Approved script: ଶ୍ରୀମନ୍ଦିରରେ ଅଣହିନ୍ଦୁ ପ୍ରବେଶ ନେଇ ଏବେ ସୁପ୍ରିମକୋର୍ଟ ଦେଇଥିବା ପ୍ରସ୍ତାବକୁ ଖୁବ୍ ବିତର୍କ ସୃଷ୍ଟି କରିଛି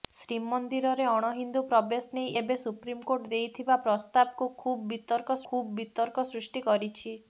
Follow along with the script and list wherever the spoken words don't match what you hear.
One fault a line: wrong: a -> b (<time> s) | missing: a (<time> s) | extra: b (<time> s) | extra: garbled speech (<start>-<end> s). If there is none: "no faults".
extra: ଖୁବ୍ ବିତର୍କ (5.5 s)